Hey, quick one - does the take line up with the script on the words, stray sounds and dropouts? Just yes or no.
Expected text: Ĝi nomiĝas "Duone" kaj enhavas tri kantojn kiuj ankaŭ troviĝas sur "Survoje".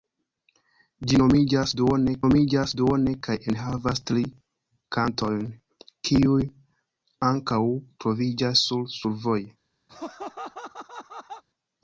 no